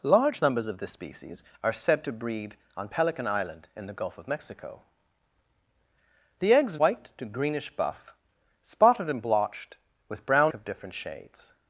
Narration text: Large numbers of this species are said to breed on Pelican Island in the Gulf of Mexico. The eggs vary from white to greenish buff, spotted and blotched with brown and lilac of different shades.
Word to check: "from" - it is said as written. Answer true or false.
false